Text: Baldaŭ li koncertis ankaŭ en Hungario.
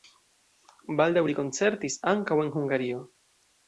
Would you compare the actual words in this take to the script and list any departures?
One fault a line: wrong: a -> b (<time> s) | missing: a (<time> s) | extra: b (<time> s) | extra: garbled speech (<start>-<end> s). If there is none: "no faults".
no faults